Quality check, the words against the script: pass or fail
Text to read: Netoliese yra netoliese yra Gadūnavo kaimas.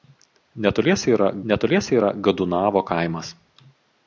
pass